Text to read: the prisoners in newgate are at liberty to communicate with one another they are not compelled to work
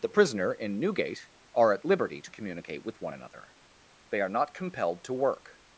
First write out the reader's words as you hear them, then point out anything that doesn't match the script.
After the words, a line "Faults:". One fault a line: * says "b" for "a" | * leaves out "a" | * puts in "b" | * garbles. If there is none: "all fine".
the prisoner in newgate are at liberty to communicate with one another they are not compelled to work
Faults:
* says "prisoner" for "prisoners"